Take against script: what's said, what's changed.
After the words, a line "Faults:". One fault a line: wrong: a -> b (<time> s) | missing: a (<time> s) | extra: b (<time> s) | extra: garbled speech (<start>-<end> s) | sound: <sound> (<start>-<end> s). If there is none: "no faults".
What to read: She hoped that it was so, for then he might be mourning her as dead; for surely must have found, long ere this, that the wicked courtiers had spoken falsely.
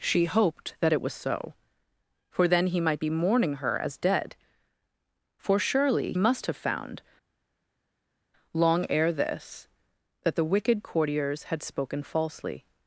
She hoped that it was so, for then he might be mourning her as dead; for surely must have found, long ere this, that the wicked courtiers had spoken falsely.
Faults:
no faults